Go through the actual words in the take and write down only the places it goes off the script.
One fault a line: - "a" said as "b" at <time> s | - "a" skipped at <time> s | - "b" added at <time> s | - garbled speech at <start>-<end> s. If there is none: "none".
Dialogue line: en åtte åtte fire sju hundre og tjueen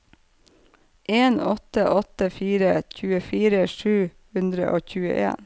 - "tjuefire" added at 2.9 s